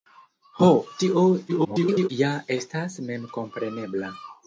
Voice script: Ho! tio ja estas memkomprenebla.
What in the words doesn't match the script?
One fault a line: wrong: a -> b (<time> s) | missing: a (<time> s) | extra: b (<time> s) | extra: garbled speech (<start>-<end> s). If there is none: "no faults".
extra: garbled speech (1.5-2.1 s)